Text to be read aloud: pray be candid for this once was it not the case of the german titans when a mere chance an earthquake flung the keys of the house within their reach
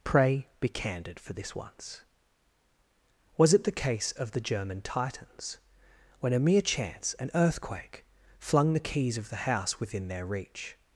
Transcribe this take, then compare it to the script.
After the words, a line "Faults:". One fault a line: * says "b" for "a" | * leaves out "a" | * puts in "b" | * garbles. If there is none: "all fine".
pray be candid for this once was it the case of the german titans when a mere chance an earthquake flung the keys of the house within their reach
Faults:
* leaves out "not"